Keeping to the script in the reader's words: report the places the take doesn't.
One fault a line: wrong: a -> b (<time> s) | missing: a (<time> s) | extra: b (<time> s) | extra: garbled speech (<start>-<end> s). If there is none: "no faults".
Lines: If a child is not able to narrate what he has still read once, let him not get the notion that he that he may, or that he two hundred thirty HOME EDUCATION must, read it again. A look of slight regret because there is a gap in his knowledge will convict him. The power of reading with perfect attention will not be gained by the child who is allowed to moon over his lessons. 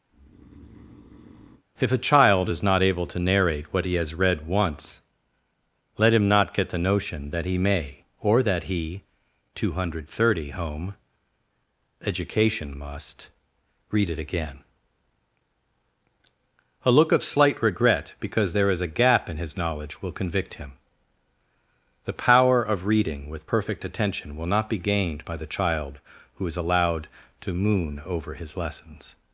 missing: still (4.1 s)
missing: that he (7.6 s)